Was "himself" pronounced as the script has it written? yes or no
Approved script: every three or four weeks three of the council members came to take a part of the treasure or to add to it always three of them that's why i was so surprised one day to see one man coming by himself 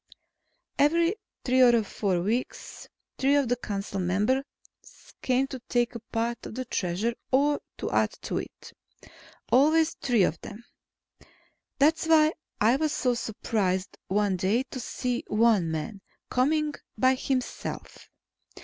yes